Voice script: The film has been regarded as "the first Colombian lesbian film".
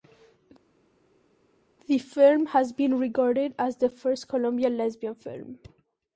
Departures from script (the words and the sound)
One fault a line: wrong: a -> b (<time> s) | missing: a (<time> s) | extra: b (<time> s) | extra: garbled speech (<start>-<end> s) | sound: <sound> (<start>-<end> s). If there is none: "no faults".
no faults